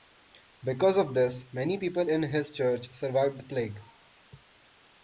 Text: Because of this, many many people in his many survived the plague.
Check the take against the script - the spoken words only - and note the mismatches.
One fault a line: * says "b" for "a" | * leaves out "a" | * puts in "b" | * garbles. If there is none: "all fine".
* leaves out "many"
* says "church" for "many"